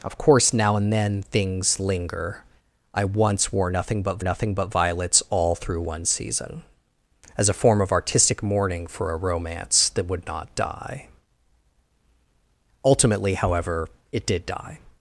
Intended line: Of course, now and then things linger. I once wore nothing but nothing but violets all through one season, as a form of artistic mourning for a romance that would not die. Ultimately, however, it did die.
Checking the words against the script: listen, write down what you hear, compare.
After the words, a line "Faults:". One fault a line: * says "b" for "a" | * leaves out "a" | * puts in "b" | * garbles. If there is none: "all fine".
Of course, now and then things linger. I once wore nothing but nothing but violets all through one season, as a form of artistic mourning for a romance that would not die. Ultimately, however, it did die.
Faults:
all fine